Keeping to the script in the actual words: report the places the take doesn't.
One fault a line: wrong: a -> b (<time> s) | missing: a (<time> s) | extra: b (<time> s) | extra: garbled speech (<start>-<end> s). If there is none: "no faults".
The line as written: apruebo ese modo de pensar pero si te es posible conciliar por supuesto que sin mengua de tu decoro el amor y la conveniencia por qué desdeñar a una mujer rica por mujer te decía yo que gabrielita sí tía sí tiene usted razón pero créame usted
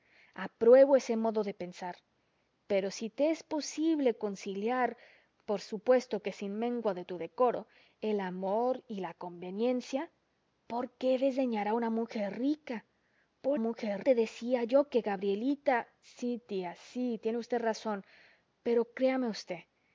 no faults